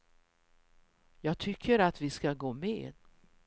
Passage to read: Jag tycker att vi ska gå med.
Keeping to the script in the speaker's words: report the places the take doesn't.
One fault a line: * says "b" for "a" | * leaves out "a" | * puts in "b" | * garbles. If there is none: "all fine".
all fine